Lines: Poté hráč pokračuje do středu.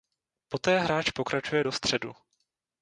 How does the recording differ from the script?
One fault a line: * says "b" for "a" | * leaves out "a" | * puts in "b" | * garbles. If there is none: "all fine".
all fine